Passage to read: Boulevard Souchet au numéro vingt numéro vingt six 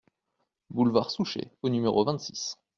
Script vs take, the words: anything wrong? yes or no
yes